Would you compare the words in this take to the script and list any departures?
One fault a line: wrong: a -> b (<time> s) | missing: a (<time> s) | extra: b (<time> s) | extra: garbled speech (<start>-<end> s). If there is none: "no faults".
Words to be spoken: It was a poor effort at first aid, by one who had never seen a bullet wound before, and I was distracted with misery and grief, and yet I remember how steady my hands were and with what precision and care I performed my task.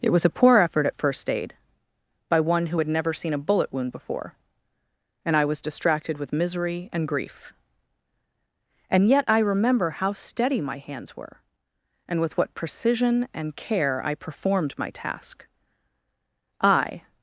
extra: I (16.6 s)